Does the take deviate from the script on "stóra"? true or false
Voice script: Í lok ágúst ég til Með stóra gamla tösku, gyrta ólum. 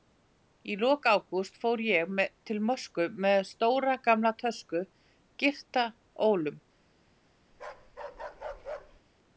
false